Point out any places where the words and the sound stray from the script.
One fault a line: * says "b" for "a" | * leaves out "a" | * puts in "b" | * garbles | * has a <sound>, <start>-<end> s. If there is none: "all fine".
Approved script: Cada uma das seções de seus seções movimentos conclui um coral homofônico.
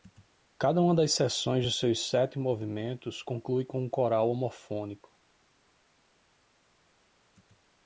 * says "sete" for "seções"
* puts in "com"